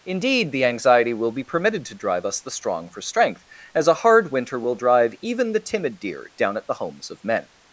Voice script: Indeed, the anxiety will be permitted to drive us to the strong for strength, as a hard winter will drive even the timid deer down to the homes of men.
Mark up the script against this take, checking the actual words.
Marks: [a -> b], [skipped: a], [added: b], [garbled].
Indeed, the anxiety will be permitted to drive us [skipped: to] the strong for strength, as a hard winter will drive even the timid deer down [to -> at] the homes of men.